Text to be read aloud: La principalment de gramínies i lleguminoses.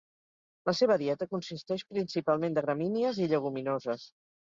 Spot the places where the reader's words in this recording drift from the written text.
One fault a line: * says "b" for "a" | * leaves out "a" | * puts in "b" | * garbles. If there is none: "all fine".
* puts in "seva dieta consisteix"